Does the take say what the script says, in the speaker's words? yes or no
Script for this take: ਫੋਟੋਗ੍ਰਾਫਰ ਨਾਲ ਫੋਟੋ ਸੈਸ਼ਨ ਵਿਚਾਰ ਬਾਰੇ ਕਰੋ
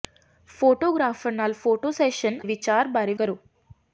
yes